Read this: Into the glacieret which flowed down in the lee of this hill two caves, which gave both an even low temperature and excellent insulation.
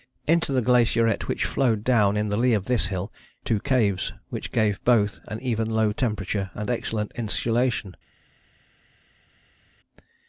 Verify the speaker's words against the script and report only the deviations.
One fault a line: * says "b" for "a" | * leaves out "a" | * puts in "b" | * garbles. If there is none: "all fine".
all fine